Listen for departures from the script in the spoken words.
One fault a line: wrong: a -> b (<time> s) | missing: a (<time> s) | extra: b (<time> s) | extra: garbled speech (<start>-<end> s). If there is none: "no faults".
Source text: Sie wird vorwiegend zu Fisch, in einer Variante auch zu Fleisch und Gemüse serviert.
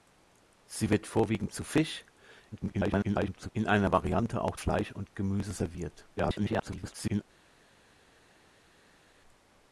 extra: garbled speech (2.5-3.5 s)
missing: zu (4.6 s)
extra: garbled speech (6.2-7.2 s)